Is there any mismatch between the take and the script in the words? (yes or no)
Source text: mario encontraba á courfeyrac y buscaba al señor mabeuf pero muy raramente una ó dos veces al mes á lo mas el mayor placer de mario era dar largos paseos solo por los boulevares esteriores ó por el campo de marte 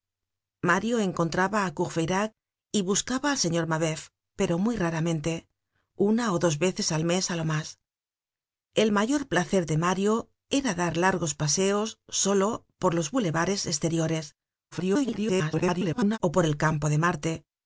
yes